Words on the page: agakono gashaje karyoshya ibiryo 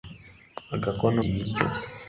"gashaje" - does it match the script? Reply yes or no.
no